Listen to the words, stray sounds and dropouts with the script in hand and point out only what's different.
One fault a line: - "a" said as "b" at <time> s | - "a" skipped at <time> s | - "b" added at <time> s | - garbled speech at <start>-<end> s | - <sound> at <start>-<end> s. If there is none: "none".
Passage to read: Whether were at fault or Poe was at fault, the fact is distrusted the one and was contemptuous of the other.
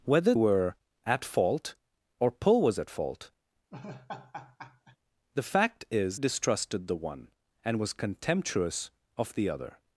- laugh at 3.7-5.0 s